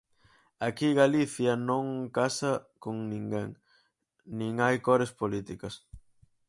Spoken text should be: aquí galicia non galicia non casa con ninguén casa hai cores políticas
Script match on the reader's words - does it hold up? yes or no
no